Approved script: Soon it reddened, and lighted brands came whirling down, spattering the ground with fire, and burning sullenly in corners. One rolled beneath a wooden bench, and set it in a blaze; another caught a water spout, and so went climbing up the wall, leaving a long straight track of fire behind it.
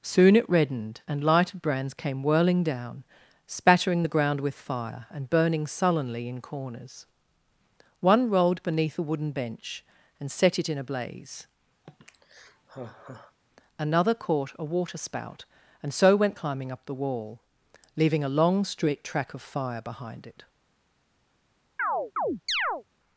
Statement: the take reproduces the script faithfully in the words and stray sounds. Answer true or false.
false